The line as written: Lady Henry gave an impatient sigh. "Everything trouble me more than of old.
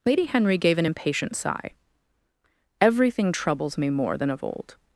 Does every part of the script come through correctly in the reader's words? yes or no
no